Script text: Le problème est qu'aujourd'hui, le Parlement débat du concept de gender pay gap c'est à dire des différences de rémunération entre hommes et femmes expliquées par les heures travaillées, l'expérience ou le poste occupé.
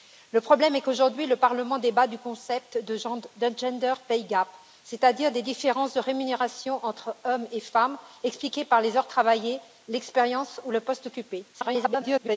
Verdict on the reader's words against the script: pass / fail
fail